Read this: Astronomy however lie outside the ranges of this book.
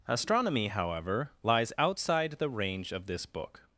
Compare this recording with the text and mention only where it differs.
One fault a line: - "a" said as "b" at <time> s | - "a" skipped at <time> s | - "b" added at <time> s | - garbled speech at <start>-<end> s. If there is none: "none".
- "lie" said as "lies" at 1.4 s
- "ranges" said as "range" at 2.5 s